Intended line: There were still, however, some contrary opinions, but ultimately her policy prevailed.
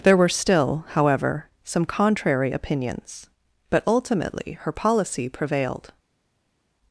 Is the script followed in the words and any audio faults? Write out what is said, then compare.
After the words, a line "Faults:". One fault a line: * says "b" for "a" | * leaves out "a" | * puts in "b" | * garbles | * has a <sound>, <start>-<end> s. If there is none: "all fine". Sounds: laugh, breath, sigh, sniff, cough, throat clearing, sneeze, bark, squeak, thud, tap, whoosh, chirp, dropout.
There were still, however, some contrary opinions, but ultimately her policy prevailed.
Faults:
all fine